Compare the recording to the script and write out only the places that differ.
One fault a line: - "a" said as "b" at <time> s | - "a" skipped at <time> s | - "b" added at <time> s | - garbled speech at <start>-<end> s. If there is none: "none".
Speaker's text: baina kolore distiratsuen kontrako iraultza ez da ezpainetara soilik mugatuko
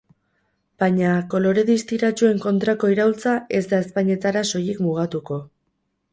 none